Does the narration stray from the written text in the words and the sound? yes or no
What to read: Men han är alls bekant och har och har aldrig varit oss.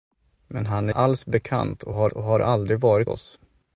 no